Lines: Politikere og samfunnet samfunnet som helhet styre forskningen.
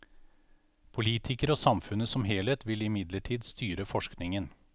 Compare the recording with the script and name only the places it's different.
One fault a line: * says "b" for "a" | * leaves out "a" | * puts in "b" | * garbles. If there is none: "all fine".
* leaves out "samfunnet"
* puts in "vil imidlertid"